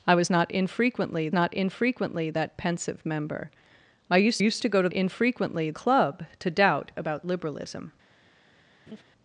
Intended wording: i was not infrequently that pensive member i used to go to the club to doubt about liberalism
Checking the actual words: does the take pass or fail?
fail